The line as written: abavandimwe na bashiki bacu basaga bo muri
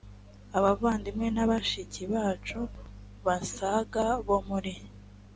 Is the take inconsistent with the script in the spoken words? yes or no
no